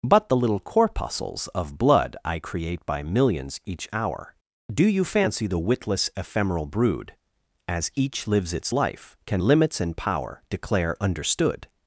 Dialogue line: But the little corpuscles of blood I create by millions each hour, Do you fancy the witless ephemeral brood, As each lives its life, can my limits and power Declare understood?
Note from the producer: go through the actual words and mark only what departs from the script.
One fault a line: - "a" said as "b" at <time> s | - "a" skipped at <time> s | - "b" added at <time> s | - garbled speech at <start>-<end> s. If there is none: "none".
- "my" skipped at 9.4 s